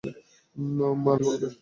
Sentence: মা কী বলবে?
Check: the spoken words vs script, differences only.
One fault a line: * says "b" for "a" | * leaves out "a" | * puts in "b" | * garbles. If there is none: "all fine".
all fine